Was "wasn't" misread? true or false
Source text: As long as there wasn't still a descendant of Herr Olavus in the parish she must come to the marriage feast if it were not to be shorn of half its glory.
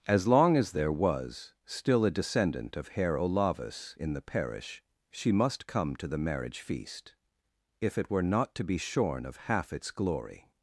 true